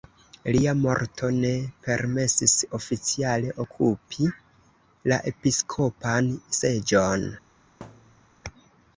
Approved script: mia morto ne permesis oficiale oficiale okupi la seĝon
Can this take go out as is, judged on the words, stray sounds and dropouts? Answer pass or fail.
fail